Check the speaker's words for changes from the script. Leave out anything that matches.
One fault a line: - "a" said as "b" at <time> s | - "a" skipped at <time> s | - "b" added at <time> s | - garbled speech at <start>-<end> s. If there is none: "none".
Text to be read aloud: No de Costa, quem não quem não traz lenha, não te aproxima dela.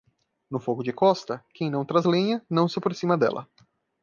- "fogo" added at 0.6 s
- "quem não" skipped at 1.9 s
- "te" said as "se" at 2.7 s